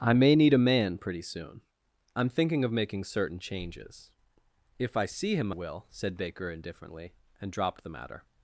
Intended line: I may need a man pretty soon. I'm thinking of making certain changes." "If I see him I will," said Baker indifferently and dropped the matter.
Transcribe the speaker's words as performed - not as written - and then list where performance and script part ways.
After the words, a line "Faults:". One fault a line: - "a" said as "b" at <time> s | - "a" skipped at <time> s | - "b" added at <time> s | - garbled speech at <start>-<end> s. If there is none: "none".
I may need a man pretty soon. I'm thinking of making certain changes." "If I see him will," said Baker indifferently and dropped the matter.
Faults:
- "I" skipped at 5.5 s